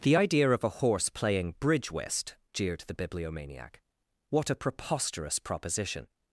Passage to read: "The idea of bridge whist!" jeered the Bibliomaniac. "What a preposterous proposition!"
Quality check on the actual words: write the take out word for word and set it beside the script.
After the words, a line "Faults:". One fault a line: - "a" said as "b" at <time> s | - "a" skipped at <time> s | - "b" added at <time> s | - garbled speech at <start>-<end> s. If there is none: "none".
"The idea of a horse playing bridge whist!" jeered the Bibliomaniac. "What a preposterous proposition!"
Faults:
- "a horse playing" added at 0.6 s